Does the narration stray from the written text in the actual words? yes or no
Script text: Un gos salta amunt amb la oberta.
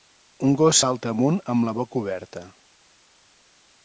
yes